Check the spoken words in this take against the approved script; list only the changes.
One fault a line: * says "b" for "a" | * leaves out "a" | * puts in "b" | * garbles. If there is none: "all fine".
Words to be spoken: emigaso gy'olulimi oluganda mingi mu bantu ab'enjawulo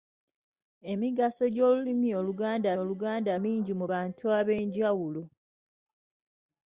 * puts in "oluganda"